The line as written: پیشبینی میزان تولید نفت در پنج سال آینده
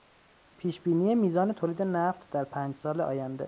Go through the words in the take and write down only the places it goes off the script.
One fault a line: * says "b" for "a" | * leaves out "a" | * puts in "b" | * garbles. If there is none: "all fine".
all fine